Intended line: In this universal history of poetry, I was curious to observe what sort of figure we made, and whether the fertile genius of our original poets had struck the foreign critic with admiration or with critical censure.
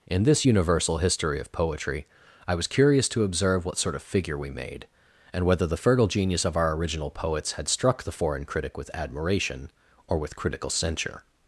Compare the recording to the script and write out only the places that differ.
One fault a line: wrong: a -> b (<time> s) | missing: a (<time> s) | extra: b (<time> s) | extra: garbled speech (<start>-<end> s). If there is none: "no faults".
no faults